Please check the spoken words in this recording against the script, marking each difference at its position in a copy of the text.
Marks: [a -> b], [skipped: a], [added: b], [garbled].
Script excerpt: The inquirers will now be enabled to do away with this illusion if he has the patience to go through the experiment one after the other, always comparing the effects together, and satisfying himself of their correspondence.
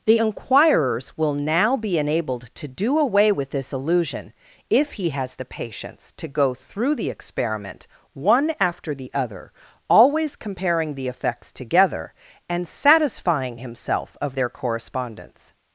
The inquirers will now be enabled to do away with this illusion if he has the patience to go through the experiment one after the other, always comparing the effects together, and satisfying himself of their correspondence.